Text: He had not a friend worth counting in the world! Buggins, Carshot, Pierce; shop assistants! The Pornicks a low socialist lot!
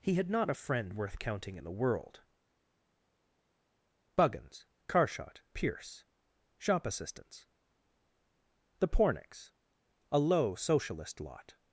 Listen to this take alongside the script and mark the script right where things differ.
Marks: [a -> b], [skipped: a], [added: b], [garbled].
He had not a friend worth counting in the world! Buggins, Carshot, Pierce; shop assistants! The Pornicks a low socialist lot!